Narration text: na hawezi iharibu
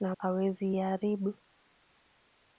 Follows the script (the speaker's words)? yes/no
yes